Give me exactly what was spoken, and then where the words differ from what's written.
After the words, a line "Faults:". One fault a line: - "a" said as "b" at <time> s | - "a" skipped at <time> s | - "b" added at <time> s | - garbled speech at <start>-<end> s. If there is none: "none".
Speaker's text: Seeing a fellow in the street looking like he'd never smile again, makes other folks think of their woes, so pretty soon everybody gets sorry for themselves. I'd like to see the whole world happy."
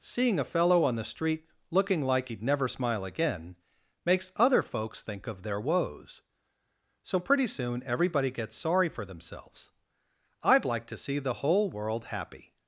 Seeing a fellow on the street looking like he'd never smile again, makes other folks think of their woes, so pretty soon everybody gets sorry for themselves. I'd like to see the whole world happy."
Faults:
- "in" said as "on" at 0.8 s